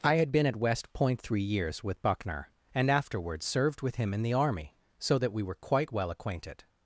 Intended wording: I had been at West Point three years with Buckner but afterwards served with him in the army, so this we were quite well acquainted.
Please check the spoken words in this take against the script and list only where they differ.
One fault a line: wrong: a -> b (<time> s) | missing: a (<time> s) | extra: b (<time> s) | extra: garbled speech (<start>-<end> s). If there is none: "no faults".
wrong: but -> and (2.7 s)
wrong: this -> that (5.2 s)